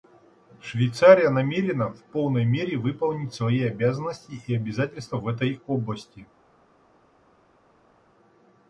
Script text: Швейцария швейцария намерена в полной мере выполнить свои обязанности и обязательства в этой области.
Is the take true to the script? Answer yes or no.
no